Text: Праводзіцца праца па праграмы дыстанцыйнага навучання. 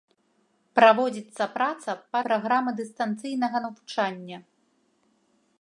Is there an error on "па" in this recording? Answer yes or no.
no